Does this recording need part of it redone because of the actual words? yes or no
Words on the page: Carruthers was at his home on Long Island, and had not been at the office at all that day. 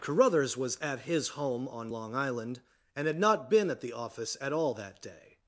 no